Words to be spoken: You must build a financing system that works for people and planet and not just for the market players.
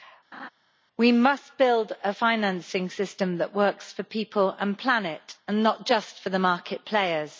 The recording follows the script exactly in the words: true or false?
false